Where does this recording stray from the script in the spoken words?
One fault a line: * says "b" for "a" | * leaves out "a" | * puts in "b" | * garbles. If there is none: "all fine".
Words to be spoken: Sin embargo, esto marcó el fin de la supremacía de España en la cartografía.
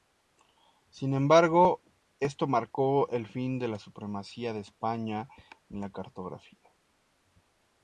all fine